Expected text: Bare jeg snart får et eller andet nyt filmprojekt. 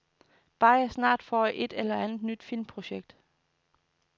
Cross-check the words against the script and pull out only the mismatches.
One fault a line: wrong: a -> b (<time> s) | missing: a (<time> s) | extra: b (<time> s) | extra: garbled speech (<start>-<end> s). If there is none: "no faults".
no faults